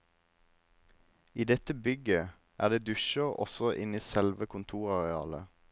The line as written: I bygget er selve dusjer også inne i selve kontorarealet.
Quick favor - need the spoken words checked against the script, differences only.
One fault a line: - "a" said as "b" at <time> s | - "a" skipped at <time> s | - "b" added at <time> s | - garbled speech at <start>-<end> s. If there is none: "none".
- "dette" added at 1.5 s
- "selve" said as "det" at 2.7 s